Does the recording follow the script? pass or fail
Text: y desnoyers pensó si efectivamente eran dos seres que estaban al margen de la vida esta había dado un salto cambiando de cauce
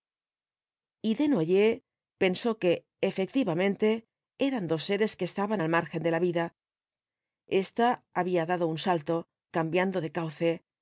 fail